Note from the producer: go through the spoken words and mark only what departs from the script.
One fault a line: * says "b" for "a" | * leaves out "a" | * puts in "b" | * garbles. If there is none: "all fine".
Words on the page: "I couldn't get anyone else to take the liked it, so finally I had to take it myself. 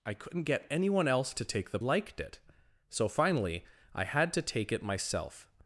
all fine